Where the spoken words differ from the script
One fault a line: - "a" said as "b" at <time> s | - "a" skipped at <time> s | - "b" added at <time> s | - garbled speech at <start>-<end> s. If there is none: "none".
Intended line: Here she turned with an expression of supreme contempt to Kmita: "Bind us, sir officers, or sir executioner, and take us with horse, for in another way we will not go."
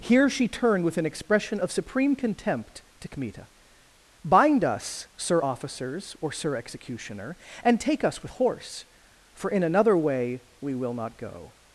none